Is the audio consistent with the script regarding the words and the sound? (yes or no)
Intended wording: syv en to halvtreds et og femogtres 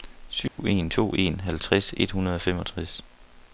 no